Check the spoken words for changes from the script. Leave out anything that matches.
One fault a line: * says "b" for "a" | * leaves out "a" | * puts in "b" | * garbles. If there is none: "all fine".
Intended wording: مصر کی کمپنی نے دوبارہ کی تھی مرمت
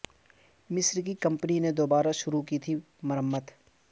* puts in "شروع"